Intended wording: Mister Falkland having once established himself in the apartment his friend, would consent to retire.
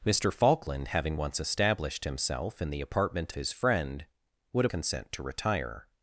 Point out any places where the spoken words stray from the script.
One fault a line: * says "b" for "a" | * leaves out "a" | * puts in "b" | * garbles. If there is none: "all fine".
all fine